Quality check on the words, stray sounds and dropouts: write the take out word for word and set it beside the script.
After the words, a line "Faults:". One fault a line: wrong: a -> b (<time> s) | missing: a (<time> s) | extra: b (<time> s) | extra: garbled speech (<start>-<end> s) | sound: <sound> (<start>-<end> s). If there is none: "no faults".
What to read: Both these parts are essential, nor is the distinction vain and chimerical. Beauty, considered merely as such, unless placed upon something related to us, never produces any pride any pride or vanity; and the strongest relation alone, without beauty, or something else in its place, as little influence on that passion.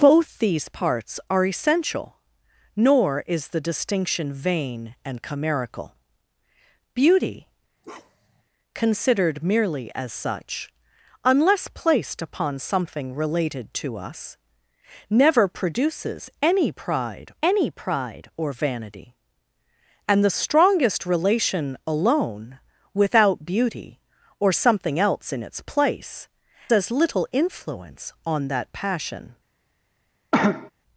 Both these parts are essential, nor is the distinction vain and chimerical. Beauty, considered merely as such, unless placed upon something related to us, never produces any pride any pride or vanity; and the strongest relation alone, without beauty, or something else in its place, as little influence on that passion.
Faults:
sound: bark (7.8-8.4 s)
sound: cough (30.3-30.7 s)